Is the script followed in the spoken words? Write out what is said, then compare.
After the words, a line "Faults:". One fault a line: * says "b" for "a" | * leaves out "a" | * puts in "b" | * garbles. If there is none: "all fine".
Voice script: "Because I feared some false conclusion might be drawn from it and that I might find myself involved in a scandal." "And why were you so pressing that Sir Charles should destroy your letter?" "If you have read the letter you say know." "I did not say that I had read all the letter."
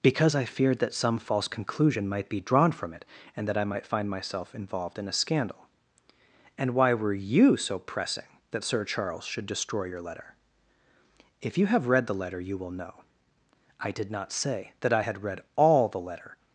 "Because I feared that some false conclusion might be drawn from it and that I might find myself involved in a scandal." "And why were you so pressing that Sir Charles should destroy your letter?" "If you have read the letter you will know." "I did not say that I had read all the letter."
Faults:
* puts in "that"
* says "will" for "say"